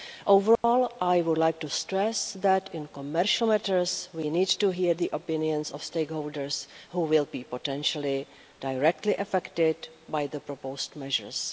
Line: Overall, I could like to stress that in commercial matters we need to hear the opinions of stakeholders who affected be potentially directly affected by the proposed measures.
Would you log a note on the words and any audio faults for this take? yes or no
yes